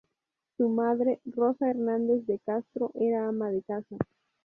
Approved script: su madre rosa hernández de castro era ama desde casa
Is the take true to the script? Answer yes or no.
no